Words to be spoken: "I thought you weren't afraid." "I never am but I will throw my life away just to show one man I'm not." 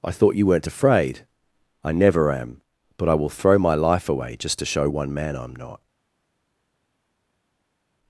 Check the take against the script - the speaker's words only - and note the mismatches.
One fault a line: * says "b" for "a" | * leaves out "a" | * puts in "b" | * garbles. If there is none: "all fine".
all fine